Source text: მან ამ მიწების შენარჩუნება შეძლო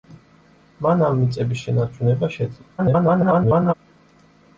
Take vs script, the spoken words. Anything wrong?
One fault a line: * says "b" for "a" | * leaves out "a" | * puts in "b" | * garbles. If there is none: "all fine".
* garbles